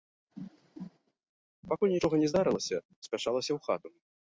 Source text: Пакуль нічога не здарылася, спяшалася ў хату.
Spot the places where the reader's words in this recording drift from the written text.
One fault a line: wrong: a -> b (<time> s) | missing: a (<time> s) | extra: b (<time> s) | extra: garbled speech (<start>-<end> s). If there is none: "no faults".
no faults